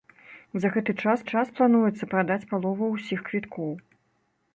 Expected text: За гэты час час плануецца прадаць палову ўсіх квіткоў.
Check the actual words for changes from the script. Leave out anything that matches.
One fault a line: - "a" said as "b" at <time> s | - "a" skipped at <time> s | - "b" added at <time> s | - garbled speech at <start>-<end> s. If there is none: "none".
none